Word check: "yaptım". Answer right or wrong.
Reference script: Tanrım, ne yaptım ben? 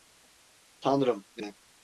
wrong